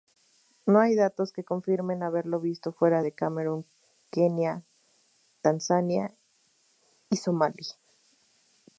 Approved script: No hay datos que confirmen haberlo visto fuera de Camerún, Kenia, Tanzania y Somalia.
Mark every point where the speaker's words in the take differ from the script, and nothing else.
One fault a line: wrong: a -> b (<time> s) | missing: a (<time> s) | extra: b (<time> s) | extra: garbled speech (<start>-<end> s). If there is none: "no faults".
no faults